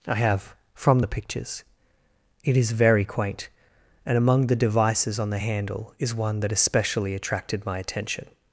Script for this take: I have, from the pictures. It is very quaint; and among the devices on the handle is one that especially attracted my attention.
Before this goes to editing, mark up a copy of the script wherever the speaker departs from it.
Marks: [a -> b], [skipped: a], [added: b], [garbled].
I have, from the pictures. It is very quaint; and among the devices on the handle is one that especially attracted my attention.